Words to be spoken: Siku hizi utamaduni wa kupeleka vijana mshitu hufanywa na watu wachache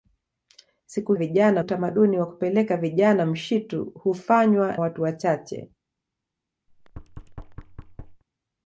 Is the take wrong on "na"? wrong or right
wrong